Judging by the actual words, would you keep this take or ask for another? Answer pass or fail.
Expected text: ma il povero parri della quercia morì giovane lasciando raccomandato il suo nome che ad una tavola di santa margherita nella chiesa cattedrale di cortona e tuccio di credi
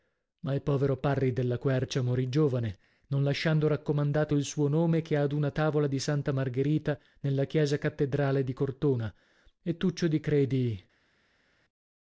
fail